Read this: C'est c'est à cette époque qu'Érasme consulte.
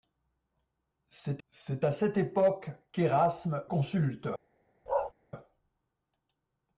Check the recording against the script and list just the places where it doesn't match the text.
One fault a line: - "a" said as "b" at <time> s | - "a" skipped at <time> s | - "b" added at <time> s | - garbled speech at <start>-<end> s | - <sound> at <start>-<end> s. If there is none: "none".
- bark at 4.9-5.1 s